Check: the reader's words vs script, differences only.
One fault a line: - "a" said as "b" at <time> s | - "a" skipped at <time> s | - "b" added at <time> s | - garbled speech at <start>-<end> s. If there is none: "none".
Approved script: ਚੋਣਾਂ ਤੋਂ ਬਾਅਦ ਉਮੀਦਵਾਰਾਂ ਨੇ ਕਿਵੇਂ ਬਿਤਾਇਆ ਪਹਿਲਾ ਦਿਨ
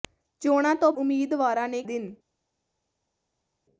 - "ਬਾਅਦ" skipped at 0.9 s
- "ਕਿਵੇਂ ਬਿਤਾਇਆ ਪਹਿਲਾ" skipped at 1.8 s